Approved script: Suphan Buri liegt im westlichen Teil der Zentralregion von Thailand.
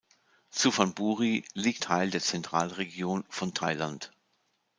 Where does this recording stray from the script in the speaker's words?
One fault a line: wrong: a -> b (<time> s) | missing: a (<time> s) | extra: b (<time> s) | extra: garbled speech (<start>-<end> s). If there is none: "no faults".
missing: im westlichen (1.8 s)